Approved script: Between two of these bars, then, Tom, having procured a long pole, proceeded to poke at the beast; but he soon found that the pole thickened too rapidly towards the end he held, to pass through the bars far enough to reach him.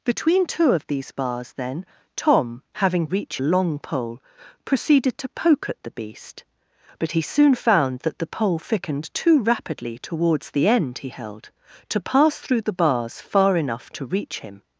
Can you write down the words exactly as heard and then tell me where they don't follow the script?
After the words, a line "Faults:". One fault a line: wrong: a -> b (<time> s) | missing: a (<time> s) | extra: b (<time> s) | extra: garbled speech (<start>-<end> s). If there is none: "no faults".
Between two of these bars, then, Tom, having reach a long pole, proceeded to poke at the beast; but he soon found that the pole thickened too rapidly towards the end he held, to pass through the bars far enough to reach him.
Faults:
wrong: procured -> reach (3.0 s)